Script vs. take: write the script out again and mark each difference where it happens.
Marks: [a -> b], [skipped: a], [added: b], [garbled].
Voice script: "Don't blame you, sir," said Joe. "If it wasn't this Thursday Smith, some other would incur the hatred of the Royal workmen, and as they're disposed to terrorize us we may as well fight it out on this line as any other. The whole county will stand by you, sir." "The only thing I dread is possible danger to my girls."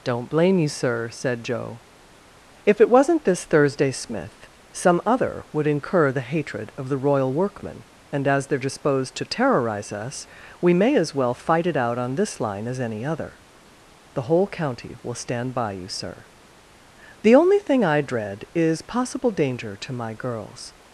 "Don't blame you, sir," said Joe. "If it wasn't this Thursday Smith, some other would incur the hatred of the Royal workmen, and as they're disposed to terrorize us we may as well fight it out on this line as any other. The whole county will stand by you, sir." "The only thing I dread is possible danger to my girls."